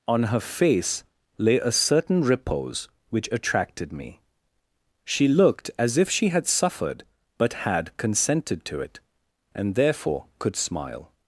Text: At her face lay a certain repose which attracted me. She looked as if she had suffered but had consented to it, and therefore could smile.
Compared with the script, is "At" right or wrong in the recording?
wrong